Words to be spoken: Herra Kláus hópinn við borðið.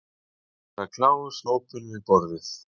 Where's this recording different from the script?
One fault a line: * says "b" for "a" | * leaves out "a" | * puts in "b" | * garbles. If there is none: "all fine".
all fine